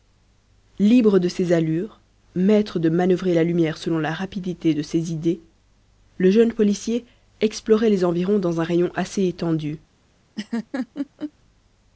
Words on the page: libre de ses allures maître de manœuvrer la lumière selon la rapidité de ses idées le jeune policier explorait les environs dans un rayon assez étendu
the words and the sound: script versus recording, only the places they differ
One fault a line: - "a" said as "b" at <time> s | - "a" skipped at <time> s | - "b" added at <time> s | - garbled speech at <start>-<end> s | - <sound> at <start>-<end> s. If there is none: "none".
- laugh at 10.4-11.3 s